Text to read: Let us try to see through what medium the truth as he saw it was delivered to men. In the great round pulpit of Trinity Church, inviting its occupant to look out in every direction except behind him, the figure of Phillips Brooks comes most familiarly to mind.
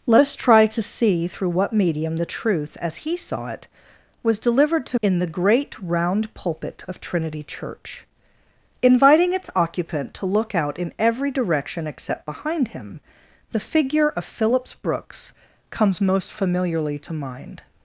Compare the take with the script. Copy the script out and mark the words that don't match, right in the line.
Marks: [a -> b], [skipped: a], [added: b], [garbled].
Let us try to see through what medium the truth as he saw it was delivered to [skipped: men.] In the great round pulpit of Trinity Church, inviting its occupant to look out in every direction except behind him, the figure of Phillips Brooks comes most familiarly to mind.